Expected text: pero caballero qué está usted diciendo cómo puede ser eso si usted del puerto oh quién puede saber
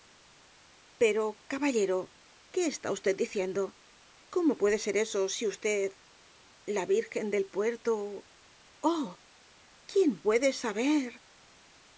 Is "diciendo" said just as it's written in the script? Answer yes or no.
yes